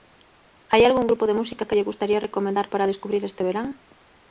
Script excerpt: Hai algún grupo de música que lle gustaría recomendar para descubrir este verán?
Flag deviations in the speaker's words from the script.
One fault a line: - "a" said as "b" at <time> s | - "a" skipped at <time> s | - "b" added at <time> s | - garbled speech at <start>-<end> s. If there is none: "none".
none